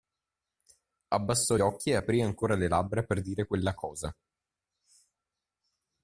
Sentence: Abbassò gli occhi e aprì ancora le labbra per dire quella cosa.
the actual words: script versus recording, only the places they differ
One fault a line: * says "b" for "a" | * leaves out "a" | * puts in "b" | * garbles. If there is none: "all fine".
* leaves out "gli"